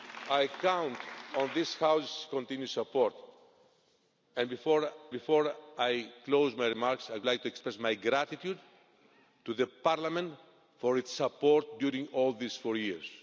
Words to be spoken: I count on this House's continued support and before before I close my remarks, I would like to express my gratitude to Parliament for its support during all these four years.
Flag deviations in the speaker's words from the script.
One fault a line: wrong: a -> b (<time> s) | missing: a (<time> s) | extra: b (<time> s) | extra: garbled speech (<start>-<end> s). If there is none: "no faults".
no faults